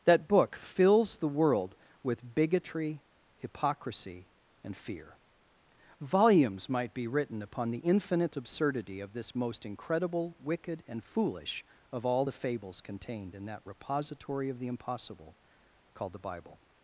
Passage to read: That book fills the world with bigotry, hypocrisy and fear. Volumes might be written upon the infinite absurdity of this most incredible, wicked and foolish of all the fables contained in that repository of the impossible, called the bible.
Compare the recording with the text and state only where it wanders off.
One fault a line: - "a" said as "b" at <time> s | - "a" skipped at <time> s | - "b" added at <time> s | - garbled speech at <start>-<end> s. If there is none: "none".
none